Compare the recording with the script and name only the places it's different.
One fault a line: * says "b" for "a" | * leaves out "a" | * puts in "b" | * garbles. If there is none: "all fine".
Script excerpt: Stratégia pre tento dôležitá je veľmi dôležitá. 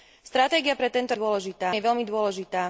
all fine